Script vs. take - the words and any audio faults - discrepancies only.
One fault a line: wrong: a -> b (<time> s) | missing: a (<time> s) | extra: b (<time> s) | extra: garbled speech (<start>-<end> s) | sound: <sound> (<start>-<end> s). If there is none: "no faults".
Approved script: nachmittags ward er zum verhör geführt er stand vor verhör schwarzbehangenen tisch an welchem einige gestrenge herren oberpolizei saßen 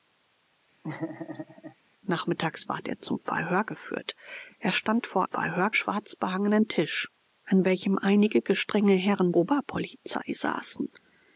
sound: laugh (0.8-1.8 s)